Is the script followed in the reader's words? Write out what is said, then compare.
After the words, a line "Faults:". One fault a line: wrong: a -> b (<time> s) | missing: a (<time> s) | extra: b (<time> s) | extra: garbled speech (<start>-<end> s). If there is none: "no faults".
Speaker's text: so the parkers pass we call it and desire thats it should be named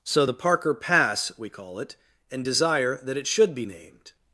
so the parker pass we call it and desire that it should be named
Faults:
wrong: parkers -> parker (0.3 s)
wrong: thats -> that (3.0 s)